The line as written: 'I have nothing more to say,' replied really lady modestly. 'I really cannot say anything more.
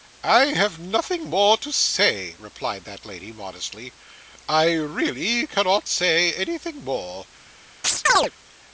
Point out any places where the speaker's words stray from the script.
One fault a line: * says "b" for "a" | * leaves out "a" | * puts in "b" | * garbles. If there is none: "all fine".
* says "that" for "really"